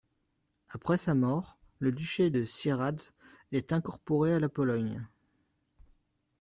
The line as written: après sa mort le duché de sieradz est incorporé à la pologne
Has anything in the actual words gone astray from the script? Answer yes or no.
no